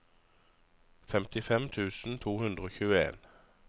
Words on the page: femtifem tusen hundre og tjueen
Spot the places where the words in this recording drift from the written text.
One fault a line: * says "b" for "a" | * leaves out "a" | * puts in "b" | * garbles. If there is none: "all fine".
* puts in "to"